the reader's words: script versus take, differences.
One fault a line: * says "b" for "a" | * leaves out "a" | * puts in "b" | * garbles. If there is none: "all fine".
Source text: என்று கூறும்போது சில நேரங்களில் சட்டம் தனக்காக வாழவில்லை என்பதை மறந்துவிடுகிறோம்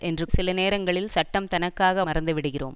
* leaves out "கூறும்போது"
* leaves out "வாழவில்லை என்பதை"